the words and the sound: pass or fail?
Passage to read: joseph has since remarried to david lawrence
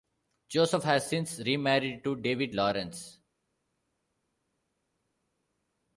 pass